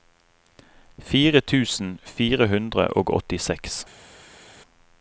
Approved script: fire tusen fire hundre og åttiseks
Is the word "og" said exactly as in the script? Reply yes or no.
yes